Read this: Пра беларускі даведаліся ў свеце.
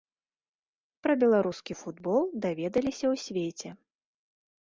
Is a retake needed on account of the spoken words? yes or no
yes